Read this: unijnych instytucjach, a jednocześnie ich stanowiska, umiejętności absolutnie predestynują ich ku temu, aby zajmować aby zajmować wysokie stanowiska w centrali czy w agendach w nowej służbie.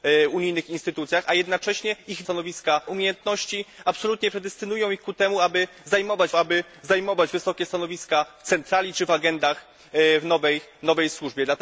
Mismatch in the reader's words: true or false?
false